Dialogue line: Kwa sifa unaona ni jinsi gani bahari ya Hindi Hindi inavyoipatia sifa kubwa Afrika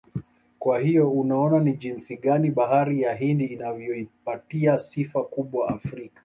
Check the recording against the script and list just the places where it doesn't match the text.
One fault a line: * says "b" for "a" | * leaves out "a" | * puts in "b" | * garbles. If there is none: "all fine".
* says "hiyo" for "sifa"
* leaves out "Hindi"